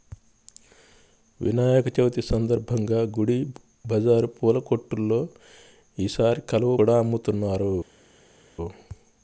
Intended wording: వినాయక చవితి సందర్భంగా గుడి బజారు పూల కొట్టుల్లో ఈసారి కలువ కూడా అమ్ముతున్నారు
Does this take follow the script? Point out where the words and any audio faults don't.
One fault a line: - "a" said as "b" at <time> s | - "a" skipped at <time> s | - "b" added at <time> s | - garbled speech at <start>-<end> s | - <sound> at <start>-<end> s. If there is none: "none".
none